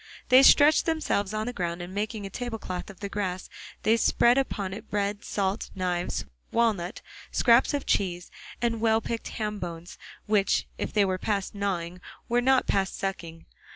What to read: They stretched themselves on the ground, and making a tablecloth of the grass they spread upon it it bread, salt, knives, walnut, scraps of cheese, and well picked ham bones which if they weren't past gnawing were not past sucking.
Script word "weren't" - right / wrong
wrong